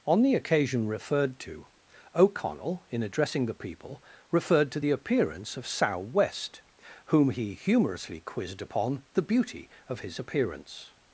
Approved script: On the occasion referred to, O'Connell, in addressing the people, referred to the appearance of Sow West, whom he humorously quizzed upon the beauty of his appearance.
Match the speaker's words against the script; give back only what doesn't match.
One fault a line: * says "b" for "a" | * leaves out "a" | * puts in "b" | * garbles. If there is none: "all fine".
all fine